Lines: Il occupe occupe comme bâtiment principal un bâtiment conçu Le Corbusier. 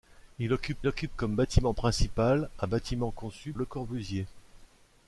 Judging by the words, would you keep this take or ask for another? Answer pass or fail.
pass